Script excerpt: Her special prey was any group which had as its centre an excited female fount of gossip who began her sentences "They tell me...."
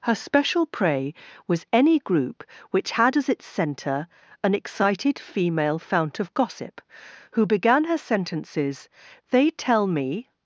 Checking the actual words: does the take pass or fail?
pass